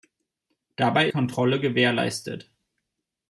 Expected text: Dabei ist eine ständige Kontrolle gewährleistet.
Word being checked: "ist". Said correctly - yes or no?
no